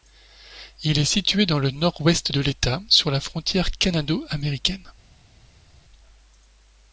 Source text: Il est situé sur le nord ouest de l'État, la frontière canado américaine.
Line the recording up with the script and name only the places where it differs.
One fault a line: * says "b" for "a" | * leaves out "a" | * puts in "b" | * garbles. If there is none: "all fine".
* says "dans" for "sur"
* puts in "sur"